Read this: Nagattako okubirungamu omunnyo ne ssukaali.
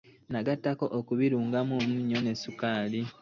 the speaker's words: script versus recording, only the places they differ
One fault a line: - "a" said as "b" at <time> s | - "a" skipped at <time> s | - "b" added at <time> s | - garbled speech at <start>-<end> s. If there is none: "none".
none